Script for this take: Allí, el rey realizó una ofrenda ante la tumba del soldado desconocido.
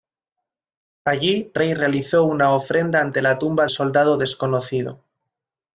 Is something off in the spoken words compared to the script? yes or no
yes